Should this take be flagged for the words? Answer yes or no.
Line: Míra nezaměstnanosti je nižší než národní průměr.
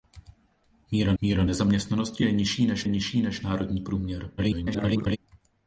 yes